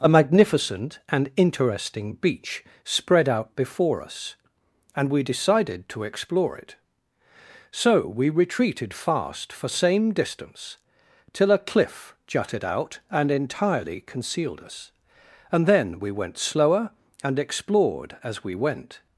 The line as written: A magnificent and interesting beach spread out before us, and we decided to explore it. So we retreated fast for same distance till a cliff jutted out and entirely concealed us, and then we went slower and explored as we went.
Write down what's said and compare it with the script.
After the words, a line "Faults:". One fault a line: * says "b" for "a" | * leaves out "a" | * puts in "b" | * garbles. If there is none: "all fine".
A magnificent and interesting beach spread out before us, and we decided to explore it. So we retreated fast for same distance till a cliff jutted out and entirely concealed us, and then we went slower and explored as we went.
Faults:
all fine